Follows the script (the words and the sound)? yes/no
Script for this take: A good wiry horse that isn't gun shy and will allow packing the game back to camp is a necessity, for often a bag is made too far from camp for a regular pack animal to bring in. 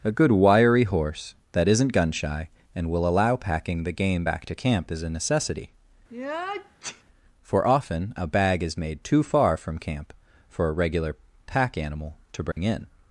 no